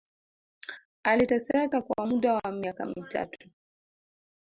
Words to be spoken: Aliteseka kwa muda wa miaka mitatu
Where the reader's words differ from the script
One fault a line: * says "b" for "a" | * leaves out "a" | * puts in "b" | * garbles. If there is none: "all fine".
all fine